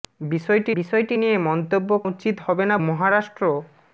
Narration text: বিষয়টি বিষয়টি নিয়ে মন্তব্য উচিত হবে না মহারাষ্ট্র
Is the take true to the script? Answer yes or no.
yes